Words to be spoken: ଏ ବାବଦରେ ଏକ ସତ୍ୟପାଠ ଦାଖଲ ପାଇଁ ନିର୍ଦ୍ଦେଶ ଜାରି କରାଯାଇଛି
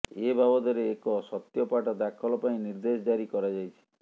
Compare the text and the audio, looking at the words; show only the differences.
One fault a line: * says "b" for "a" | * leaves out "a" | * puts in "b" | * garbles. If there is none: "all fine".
all fine